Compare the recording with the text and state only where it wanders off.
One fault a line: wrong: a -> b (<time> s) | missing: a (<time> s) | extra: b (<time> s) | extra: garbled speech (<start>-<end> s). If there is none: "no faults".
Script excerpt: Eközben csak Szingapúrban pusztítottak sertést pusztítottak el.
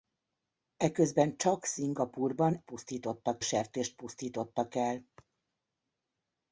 no faults